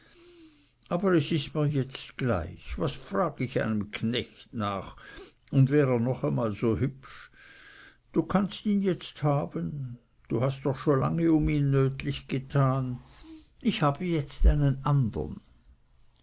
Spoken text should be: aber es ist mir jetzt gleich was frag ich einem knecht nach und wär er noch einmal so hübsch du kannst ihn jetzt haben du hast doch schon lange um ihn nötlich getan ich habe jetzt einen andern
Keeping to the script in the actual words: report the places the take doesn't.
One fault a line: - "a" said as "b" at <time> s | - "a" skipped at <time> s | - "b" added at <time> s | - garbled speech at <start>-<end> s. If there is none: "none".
none